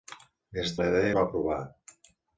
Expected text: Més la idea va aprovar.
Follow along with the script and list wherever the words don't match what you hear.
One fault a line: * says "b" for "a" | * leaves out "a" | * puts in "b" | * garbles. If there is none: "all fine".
all fine